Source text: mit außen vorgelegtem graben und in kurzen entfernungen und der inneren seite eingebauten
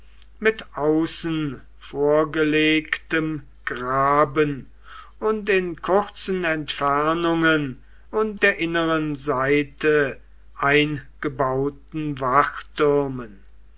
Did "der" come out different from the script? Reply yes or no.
no